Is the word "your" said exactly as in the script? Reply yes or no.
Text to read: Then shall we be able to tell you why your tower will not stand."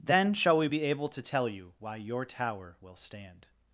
yes